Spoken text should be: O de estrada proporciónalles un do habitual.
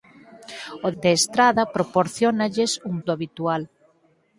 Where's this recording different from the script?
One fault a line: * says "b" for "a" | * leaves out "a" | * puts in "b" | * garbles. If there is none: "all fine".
all fine